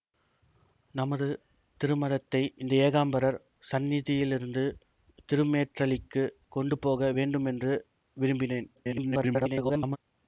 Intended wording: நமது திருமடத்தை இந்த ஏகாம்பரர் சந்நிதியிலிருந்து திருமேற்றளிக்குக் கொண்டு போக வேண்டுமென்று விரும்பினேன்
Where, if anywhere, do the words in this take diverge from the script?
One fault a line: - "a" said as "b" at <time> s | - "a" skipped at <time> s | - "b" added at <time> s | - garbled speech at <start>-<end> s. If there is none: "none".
- garbled speech at 8.8-10.0 s